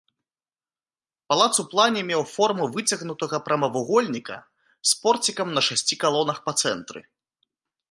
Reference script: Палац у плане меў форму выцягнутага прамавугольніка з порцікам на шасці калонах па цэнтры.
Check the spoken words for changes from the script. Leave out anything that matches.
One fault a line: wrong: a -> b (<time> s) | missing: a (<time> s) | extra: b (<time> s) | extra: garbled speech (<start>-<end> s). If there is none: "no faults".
no faults